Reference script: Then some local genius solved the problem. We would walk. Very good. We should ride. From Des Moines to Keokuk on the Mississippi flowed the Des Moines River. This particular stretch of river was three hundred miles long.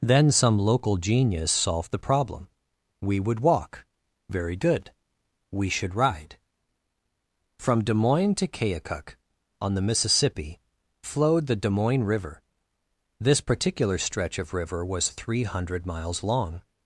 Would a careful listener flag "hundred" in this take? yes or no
no